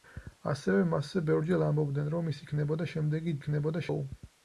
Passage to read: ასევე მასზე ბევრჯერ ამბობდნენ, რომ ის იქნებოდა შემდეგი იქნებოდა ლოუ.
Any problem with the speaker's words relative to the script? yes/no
no